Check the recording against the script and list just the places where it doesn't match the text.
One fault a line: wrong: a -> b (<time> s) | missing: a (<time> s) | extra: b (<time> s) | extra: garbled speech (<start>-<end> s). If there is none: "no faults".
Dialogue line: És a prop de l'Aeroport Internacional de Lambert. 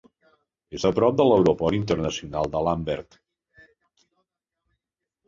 no faults